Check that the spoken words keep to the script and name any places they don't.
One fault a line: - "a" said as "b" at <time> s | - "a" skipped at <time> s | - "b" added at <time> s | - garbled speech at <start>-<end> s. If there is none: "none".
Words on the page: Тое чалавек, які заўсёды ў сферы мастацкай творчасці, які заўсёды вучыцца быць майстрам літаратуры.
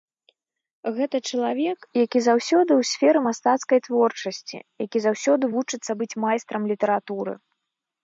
- "Тое" said as "Гэта" at 0.9 s